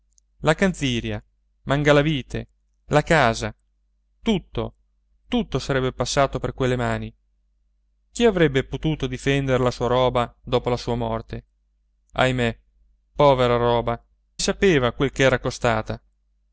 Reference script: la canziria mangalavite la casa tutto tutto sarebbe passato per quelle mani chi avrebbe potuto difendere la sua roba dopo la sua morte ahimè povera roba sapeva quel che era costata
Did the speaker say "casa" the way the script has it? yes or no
yes